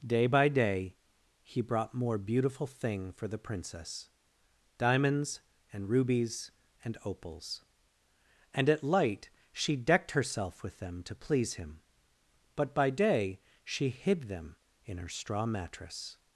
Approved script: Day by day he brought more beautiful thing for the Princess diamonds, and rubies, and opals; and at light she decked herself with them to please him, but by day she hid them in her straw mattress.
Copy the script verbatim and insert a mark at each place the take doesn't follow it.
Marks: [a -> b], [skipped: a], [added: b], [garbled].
Day by day he brought more beautiful thing for the Princess diamonds, and rubies, and opals; and at light she decked herself with them to please him, but by day she hid them in her straw mattress.